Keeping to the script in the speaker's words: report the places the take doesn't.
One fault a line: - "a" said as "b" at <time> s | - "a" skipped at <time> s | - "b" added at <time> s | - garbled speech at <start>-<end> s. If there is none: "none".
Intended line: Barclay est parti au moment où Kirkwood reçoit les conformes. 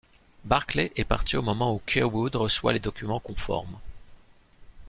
- "documents" added at 2.8 s